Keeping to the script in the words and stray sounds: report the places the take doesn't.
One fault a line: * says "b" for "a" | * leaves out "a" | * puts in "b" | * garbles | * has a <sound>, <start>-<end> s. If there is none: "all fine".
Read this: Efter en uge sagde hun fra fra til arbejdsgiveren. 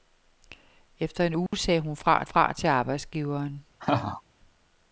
* has a dropout, 1.5-1.5 s
* has a laugh, 3.8-4.2 s